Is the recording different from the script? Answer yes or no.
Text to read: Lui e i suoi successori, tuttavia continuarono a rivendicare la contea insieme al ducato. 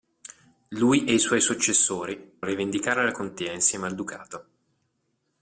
yes